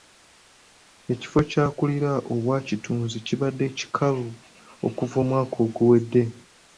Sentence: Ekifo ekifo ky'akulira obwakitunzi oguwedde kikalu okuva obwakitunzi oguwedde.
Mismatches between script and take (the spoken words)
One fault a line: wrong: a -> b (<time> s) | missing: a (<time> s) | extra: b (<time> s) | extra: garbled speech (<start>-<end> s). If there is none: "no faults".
missing: ekifo (1.4 s)
wrong: oguwedde -> kibadde (3.3 s)
wrong: obwakitunzi -> omwaka (5.2 s)